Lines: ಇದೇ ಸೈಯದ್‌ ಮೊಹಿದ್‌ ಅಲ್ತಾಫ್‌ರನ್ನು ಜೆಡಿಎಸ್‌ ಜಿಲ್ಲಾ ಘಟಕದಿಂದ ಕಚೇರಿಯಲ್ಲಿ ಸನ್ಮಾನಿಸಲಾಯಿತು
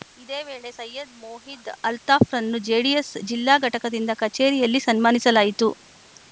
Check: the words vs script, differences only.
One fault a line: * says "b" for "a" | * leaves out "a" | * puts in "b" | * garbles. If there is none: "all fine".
* puts in "ವೇಳೆ"